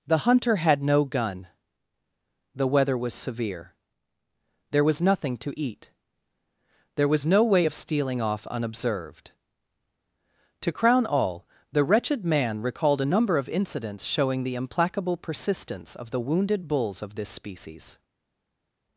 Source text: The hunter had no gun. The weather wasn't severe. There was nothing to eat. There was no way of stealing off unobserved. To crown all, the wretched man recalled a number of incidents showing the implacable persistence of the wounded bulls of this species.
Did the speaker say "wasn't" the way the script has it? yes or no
no